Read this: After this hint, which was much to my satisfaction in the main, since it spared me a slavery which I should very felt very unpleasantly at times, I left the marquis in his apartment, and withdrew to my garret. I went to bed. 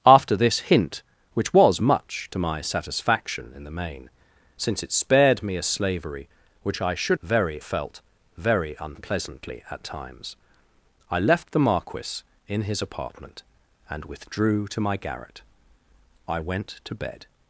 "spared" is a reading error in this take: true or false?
false